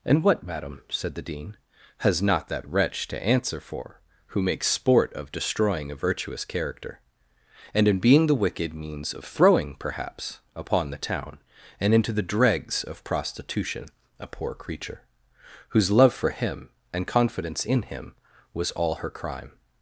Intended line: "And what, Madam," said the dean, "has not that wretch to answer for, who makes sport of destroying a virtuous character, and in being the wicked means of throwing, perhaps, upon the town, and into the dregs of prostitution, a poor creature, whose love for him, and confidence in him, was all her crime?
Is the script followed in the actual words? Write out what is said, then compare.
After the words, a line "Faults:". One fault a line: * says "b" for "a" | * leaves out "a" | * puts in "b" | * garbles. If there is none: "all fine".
"And what, Madam," said the dean, "has not that wretch to answer for, who makes sport of destroying a virtuous character, and in being the wicked means of throwing, perhaps, upon the town, and into the dregs of prostitution, a poor creature, whose love for him, and confidence in him, was all her crime?
Faults:
all fine